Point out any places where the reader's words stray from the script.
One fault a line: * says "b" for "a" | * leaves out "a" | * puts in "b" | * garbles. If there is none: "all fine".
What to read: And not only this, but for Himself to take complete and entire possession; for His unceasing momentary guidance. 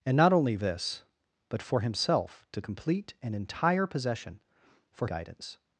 * leaves out "take"
* leaves out "His unceasing momentary"